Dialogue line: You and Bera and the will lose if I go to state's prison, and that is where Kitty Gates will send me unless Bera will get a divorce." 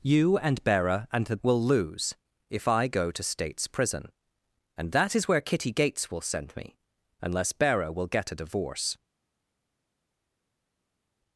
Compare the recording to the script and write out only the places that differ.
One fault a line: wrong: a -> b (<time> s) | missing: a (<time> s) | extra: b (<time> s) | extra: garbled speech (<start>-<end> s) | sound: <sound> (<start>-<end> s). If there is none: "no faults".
no faults